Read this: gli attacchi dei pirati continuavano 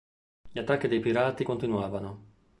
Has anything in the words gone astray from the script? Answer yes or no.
no